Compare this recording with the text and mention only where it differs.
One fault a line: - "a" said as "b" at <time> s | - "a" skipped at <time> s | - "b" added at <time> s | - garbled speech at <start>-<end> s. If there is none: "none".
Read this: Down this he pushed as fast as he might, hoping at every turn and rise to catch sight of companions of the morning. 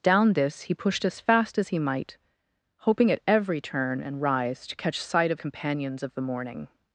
none